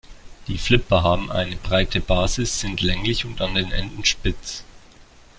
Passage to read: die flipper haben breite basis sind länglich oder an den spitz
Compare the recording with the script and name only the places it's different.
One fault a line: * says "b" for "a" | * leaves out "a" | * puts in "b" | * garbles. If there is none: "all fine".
* puts in "eine"
* says "und" for "oder"
* puts in "enden"